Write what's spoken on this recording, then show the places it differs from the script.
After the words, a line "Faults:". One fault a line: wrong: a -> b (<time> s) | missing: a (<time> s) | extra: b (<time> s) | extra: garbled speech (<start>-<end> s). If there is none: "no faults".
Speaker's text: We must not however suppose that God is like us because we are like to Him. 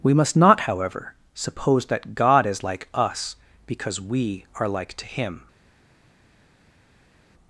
We must not however suppose that God is like us because we are like to Him.
Faults:
no faults